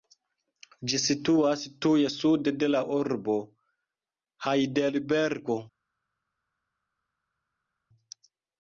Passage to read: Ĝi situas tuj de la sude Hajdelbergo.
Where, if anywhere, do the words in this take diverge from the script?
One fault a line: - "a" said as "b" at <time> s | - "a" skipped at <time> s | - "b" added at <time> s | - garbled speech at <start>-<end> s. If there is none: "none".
- "sude" added at 2.1 s
- "sude" said as "urbo" at 3.0 s